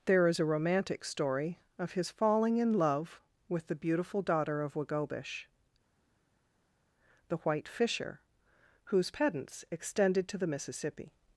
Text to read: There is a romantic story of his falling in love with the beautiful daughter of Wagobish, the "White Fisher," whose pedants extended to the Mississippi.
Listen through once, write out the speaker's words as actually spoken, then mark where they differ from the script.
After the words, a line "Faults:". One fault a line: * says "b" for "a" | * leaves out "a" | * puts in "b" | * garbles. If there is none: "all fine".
There is a romantic story of his falling in love with the beautiful daughter of Wagobish, the "White Fisher," whose pedants extended to the Mississippi.
Faults:
all fine